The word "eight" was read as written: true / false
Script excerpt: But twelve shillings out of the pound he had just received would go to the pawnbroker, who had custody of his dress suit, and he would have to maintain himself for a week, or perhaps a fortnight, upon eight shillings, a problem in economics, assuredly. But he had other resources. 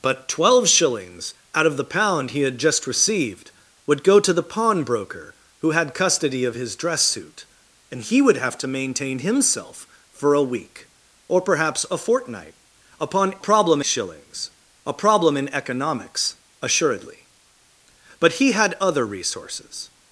false